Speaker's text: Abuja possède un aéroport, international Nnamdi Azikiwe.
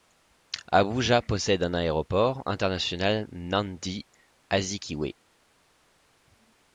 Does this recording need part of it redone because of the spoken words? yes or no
no